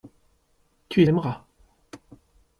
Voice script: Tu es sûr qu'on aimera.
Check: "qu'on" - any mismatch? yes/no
yes